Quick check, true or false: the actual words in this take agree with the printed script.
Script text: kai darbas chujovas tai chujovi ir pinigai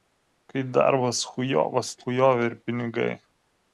false